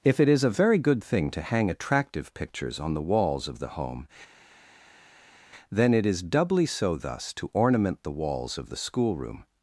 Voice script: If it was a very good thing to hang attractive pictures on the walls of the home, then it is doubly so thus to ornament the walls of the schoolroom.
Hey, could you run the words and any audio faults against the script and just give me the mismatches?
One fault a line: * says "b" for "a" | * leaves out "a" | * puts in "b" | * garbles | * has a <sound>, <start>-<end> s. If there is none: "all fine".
* says "is" for "was"